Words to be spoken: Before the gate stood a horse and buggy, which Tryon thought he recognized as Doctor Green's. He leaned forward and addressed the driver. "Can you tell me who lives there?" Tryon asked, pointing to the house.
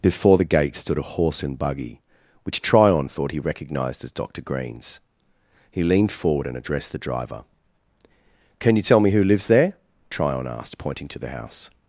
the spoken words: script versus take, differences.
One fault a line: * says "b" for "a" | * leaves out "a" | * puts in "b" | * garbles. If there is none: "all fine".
all fine